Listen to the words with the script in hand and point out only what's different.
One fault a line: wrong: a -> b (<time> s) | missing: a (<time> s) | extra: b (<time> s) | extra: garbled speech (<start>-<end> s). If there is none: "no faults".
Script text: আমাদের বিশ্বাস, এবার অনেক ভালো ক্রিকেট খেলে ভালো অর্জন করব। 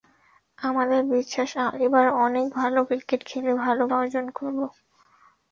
no faults